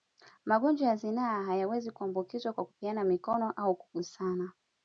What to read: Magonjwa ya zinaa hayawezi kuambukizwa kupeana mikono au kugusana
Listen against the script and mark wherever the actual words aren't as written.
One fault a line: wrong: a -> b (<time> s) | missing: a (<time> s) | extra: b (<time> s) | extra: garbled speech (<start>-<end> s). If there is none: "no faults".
extra: kwa (2.5 s)